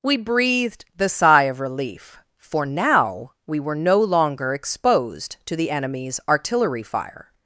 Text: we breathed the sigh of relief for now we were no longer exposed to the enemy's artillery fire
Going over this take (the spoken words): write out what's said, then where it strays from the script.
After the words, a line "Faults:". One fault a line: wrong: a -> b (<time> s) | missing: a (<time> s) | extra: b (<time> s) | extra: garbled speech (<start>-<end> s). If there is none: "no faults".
we breathed the sigh of relief for now we were no longer exposed to the enemy's artillery fire
Faults:
no faults